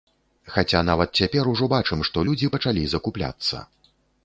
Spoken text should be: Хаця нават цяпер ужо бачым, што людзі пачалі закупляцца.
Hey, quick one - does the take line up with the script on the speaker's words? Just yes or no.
yes